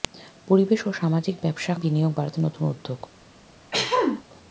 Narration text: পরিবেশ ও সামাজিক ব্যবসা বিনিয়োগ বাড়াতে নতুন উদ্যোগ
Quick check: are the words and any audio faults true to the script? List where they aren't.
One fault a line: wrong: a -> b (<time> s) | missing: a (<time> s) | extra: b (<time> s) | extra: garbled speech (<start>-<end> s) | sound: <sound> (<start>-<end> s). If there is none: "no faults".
sound: throat clearing (3.7-4.2 s)